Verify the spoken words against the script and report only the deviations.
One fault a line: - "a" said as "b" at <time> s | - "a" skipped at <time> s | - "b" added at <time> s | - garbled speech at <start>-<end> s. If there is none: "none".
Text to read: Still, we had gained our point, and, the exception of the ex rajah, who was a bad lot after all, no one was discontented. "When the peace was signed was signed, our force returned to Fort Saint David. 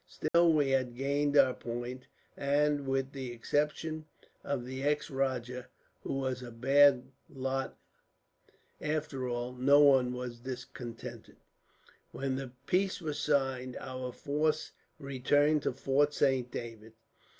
- "with" added at 2.9 s
- "was signed" skipped at 13.8 s